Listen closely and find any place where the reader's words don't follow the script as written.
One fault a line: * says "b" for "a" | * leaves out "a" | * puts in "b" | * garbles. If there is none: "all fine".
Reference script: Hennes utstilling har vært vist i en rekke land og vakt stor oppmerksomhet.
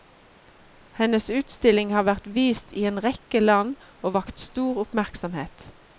all fine